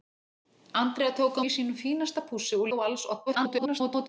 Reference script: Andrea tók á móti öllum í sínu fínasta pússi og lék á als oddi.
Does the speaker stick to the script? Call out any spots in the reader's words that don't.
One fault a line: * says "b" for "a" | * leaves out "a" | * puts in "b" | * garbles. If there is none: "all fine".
* leaves out "móti öllum"
* leaves out "lék"
* garbles